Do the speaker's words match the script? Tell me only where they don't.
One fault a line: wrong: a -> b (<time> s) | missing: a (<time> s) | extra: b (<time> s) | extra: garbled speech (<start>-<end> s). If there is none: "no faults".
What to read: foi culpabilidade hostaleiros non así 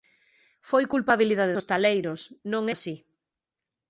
no faults